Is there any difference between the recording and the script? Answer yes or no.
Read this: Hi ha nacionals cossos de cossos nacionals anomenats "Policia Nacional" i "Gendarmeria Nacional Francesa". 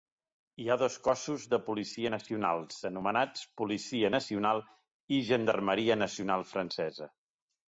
yes